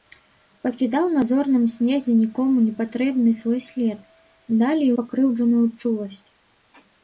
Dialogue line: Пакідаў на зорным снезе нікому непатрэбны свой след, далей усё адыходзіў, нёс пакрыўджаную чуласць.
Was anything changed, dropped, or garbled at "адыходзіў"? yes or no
yes